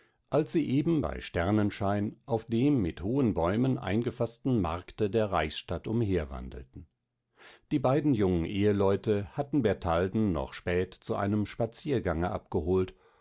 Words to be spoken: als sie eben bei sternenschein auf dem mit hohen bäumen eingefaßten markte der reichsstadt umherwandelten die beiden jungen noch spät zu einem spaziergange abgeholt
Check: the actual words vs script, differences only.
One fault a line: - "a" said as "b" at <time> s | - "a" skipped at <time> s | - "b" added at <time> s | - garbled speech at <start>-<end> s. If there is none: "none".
- "eheleute hatten bertalden" added at 8.4 s